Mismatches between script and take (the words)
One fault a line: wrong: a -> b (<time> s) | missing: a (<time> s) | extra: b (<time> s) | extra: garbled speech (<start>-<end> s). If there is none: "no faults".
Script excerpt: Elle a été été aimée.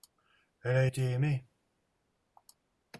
missing: été (1.0 s)